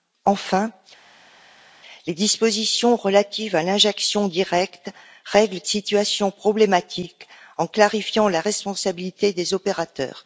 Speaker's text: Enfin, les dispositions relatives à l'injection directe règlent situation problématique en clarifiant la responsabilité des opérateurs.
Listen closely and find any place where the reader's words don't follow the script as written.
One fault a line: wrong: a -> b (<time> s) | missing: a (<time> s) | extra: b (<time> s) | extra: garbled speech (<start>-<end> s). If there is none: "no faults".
no faults